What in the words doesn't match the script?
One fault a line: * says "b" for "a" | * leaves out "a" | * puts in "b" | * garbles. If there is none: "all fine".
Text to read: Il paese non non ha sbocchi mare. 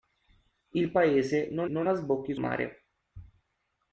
all fine